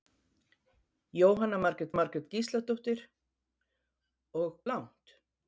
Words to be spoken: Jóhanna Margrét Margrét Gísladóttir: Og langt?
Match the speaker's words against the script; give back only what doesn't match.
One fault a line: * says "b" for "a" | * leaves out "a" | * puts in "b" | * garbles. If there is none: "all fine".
all fine